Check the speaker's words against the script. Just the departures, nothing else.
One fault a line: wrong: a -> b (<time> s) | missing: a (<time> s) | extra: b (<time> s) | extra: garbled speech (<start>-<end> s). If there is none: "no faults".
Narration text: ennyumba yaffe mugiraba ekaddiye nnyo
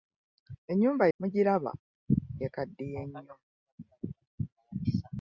missing: yaffe (1.1 s)